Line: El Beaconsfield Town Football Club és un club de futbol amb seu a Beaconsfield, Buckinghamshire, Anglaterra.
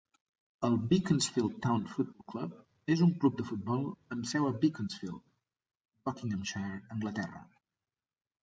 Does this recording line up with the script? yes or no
yes